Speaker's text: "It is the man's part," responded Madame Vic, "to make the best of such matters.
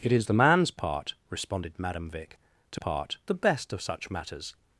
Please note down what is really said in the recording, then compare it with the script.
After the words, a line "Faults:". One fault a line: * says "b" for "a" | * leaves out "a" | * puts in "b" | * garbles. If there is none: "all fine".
"It is the man's part," responded Madame Vic, "to part the best of such matters.
Faults:
* says "part" for "make"